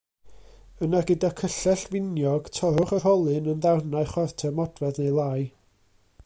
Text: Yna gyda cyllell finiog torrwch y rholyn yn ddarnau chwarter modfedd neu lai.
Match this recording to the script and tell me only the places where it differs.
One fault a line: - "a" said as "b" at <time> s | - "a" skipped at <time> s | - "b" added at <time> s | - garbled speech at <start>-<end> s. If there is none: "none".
none